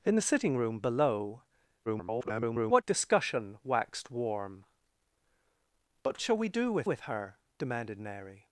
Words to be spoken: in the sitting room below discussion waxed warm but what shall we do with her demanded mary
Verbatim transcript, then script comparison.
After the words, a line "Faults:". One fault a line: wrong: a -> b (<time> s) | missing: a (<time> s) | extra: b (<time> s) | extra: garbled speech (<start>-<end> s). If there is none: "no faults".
in the sitting room below [garbled] discussion waxed warm but shall we do with with her demanded mary
Faults:
extra: garbled speech (1.9-2.8 s)
missing: what (6.2 s)
extra: with (6.8 s)